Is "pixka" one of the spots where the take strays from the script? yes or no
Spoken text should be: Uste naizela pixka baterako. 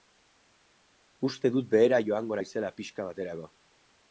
no